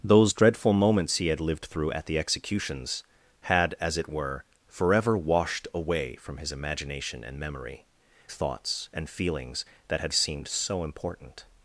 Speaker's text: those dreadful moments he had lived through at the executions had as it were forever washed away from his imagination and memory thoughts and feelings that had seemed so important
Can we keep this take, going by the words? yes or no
yes